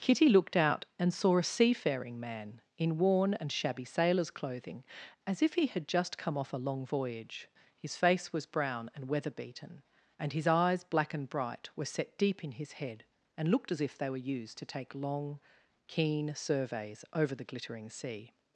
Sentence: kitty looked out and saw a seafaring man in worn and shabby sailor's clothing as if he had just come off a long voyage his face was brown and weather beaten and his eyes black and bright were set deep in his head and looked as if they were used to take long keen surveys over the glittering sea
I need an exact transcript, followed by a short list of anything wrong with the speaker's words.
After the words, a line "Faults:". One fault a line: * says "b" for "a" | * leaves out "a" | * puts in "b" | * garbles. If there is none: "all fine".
kitty looked out and saw a seafaring man in worn and shabby sailor's clothing as if he had just come off a long voyage his face was brown and weather beaten and his eyes black and bright were set deep in his head and looked as if they were used to take long keen surveys over the glittering sea
Faults:
all fine